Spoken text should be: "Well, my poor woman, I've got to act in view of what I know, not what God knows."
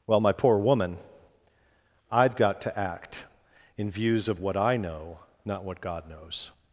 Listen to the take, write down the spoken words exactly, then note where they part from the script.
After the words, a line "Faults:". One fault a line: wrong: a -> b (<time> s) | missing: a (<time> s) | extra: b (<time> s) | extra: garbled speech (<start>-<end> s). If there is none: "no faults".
"Well, my poor woman, I've got to act in views of what I know, not what God knows."
Faults:
wrong: view -> views (3.9 s)